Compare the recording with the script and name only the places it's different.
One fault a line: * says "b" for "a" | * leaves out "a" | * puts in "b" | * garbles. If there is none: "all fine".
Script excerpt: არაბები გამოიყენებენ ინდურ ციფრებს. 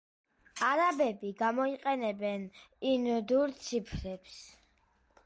all fine